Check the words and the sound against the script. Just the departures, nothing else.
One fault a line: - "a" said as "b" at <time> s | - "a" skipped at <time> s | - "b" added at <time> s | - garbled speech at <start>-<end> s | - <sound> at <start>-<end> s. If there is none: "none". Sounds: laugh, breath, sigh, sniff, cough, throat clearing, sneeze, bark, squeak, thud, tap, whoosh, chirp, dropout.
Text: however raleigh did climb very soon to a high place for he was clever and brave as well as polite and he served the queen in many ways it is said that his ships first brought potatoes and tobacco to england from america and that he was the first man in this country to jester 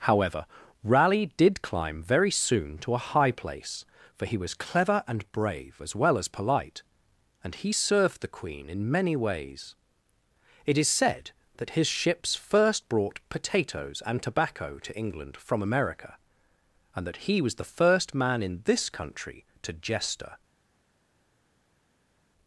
none